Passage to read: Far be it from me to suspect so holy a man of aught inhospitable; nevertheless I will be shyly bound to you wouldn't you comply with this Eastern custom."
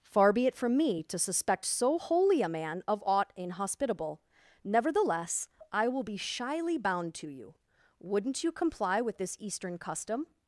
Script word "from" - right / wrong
right